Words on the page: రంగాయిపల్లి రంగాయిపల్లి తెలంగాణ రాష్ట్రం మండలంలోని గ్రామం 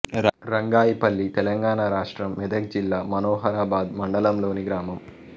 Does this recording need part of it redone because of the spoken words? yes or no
yes